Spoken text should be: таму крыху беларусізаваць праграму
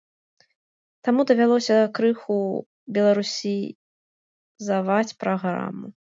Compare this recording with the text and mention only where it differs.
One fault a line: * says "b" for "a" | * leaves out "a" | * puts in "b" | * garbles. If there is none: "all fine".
* puts in "давялося"